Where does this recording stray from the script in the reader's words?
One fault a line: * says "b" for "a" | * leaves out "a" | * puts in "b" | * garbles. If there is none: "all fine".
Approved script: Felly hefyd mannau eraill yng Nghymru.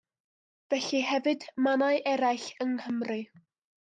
all fine